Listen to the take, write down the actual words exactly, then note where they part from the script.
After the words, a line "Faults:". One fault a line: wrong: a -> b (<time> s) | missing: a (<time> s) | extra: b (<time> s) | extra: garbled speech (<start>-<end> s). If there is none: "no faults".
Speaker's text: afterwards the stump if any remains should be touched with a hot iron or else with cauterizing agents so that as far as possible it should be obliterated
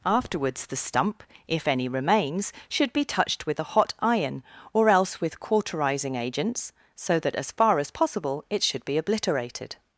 afterwards the stump if any remains should be touched with a hot iron or else with cauterizing agents so that as far as possible it should be obliterated
Faults:
no faults